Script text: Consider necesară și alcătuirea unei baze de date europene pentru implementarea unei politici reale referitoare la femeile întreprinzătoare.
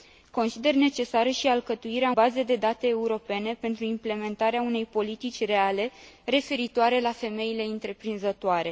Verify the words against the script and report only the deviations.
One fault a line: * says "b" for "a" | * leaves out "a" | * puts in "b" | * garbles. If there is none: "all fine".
* leaves out "unei"